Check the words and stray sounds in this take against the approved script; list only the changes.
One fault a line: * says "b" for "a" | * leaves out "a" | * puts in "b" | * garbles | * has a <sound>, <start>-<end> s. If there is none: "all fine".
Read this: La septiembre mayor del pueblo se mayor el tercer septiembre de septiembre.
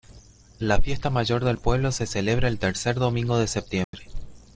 * says "fiesta" for "septiembre"
* says "celebra" for "mayor"
* says "domingo" for "septiembre"
* has a dropout, 3.8-3.9 s